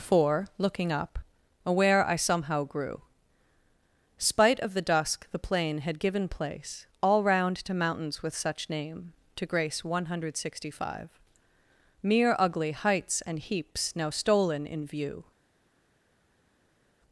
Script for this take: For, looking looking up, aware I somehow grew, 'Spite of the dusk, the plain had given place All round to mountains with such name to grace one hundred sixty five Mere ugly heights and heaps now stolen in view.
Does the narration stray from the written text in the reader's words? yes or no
yes